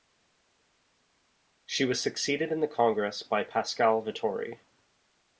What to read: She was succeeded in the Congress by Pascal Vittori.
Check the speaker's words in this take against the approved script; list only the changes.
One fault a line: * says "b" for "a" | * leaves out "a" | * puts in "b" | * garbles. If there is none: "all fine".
all fine